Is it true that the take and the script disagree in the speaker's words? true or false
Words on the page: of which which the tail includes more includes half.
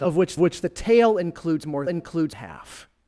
false